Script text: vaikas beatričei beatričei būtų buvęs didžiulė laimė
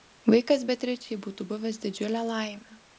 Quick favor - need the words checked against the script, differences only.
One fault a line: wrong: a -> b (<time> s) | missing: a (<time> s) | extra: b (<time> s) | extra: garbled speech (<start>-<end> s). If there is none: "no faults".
missing: beatričei (1.2 s)